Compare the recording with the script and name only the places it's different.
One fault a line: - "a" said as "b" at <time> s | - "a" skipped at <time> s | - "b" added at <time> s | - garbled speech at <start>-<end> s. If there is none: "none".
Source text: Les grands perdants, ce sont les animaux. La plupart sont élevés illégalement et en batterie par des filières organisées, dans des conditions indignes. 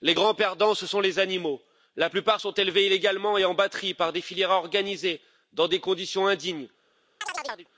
none